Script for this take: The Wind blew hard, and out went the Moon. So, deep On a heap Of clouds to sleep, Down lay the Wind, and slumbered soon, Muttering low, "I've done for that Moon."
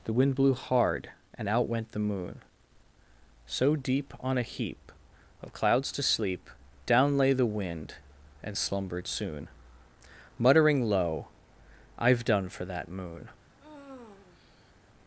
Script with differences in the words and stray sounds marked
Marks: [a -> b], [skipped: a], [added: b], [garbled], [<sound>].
The Wind blew hard, and out went the Moon. So, deep On a heap Of clouds to sleep, Down lay the Wind, and slumbered soon, Muttering low, "I've done for that Moon." [sigh]